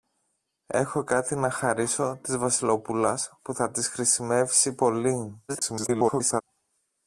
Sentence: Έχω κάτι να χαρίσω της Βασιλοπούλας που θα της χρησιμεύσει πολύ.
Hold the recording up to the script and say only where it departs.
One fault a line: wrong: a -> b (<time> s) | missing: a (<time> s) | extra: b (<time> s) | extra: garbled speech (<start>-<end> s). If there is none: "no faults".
extra: garbled speech (5.5-6.4 s)